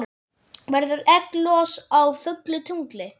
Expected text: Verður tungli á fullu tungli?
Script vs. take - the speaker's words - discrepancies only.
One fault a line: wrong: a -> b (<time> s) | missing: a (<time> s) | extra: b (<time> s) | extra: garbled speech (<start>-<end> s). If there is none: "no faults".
wrong: tungli -> egglos (1.1 s)